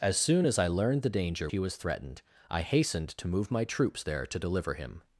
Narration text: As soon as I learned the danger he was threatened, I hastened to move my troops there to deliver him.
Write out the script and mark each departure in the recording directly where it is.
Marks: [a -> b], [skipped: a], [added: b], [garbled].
As soon as I learned the danger he was threatened, I hastened to move my troops there to deliver him.